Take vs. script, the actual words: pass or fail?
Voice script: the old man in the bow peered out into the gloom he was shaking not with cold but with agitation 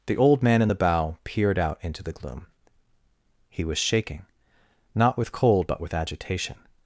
pass